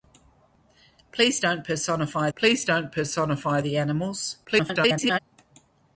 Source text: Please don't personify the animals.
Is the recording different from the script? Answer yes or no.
yes